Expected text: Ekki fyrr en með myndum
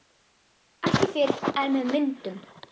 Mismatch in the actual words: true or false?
false